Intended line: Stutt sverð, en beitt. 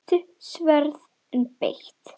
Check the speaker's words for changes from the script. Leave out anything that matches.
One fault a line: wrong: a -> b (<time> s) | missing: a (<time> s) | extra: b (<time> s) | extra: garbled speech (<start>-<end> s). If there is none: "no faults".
no faults